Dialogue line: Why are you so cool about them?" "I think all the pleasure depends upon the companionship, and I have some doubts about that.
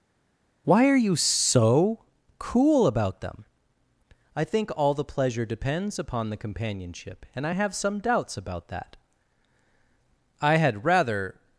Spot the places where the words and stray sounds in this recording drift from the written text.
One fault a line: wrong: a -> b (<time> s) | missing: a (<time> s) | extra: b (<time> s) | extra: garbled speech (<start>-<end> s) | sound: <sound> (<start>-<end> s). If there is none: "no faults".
extra: I had rather (10.4 s)